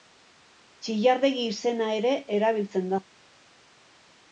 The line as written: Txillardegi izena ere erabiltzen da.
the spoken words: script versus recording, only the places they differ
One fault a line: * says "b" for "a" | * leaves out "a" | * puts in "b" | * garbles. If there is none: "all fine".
all fine